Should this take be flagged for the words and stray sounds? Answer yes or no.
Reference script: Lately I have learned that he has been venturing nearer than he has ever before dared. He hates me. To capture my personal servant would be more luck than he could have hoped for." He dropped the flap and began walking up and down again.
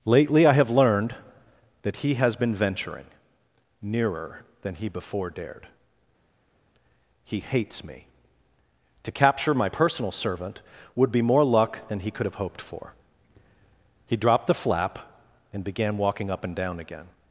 yes